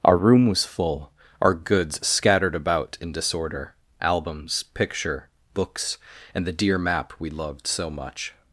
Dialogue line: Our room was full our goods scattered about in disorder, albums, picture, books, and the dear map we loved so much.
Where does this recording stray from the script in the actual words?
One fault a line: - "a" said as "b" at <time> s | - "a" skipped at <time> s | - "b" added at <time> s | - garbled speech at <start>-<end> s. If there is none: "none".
none